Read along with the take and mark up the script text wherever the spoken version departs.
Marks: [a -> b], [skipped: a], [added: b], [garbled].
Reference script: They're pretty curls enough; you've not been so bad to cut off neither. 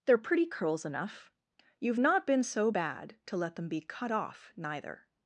They're pretty curls enough; you've not been so bad to [added: let them be] cut off neither.